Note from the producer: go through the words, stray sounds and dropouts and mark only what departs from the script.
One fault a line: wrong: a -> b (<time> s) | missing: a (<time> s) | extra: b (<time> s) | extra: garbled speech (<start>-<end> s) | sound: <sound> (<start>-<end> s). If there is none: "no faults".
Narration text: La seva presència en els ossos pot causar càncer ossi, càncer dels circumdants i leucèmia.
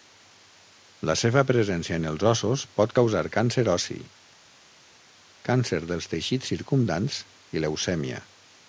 extra: teixits (6.1 s)